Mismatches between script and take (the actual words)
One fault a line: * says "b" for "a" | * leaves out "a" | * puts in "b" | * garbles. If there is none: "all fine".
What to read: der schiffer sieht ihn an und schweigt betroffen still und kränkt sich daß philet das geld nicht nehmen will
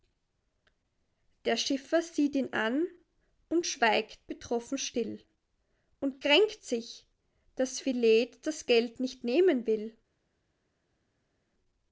all fine